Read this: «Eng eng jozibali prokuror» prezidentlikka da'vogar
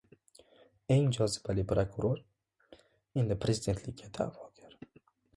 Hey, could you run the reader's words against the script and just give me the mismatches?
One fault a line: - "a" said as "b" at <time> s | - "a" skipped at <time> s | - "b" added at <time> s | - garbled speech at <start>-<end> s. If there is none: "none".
- "eng" skipped at 1.1 s
- "endi" added at 3.2 s